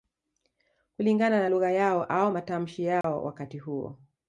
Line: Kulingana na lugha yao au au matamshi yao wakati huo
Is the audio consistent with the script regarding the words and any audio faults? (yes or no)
no